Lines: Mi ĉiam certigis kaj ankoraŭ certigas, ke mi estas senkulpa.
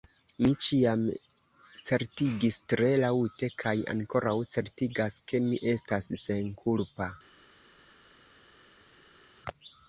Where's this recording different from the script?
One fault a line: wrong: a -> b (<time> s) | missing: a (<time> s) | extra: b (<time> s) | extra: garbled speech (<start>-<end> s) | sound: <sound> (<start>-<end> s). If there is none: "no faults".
extra: tre laŭte (2.7 s)